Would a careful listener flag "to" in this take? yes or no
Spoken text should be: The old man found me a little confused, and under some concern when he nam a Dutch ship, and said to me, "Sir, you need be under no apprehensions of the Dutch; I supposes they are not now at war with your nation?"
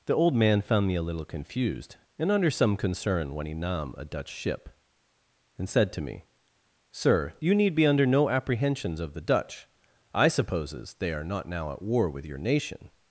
no